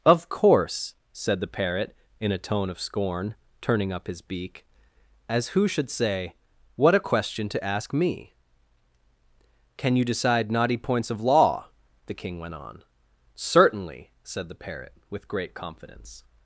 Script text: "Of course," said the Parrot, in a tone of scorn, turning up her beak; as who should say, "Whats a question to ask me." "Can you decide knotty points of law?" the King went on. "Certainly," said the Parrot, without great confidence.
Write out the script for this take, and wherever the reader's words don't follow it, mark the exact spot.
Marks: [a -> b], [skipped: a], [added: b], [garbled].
"Of course," said the Parrot, in a tone of scorn, turning up [her -> his] beak; as who should say, ["Whats -> What] a question to ask me." "Can you decide knotty points of law?" the King went on. "Certainly," said the Parrot, [without -> with] great confidence.